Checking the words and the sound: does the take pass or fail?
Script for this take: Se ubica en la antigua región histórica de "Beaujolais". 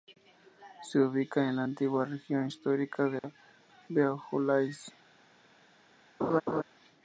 fail